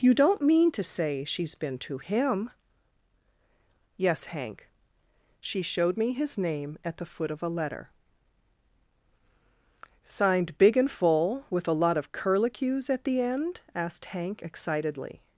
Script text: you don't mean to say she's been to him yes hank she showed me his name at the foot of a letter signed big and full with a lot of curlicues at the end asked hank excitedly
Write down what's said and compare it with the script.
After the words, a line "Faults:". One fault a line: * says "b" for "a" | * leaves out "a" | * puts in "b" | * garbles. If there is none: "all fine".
you don't mean to say she's been to him yes hank she showed me his name at the foot of a letter signed big and full with a lot of curlicues at the end asked hank excitedly
Faults:
all fine